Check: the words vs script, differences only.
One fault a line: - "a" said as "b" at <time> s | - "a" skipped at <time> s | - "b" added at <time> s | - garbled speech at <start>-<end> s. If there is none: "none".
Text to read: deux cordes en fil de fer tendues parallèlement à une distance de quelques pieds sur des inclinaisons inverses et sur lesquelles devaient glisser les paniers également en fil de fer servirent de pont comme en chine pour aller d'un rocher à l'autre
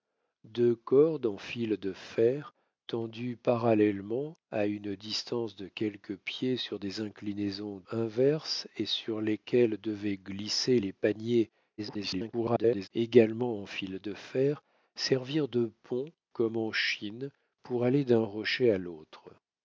- garbled speech at 11.8-12.9 s